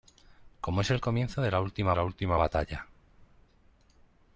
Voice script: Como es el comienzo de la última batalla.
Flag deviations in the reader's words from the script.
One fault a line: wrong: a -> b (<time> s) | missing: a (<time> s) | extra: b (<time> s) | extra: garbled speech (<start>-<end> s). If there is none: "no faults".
extra: la última (1.9 s)